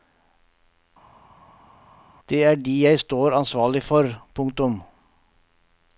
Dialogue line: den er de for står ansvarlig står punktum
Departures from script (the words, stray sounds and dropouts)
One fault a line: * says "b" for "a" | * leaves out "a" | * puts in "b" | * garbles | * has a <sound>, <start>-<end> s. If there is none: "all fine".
* says "det" for "den"
* says "jeg" for "for"
* says "for" for "står"